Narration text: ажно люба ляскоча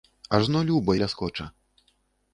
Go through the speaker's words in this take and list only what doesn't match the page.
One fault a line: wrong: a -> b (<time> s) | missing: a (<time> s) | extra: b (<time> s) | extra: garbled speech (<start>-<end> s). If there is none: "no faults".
no faults